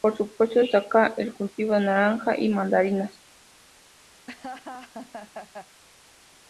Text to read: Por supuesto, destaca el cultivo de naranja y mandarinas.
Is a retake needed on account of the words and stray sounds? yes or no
yes